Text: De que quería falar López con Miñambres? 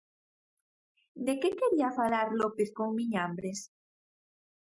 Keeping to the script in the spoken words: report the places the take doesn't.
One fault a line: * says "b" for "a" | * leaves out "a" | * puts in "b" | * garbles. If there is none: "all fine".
all fine